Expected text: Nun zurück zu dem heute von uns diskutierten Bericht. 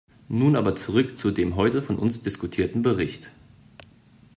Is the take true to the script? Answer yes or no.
no